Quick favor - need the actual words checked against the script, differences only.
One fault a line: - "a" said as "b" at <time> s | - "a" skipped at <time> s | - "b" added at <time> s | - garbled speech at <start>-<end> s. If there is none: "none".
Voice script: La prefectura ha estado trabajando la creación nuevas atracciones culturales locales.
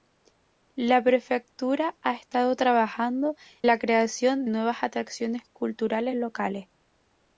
none